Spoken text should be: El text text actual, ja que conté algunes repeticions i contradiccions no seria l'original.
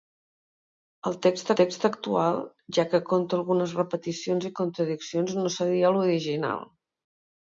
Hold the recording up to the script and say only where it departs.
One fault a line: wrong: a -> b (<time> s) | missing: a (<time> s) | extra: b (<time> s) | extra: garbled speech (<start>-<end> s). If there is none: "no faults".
no faults